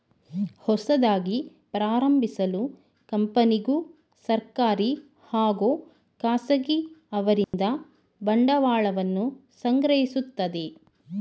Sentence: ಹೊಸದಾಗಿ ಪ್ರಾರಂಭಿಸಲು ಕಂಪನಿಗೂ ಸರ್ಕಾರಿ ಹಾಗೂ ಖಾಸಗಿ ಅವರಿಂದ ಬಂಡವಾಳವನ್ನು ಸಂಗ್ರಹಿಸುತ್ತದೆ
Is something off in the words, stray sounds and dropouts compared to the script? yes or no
yes